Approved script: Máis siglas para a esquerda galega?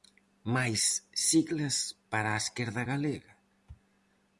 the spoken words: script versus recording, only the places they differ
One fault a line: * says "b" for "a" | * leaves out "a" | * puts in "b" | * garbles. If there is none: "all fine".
all fine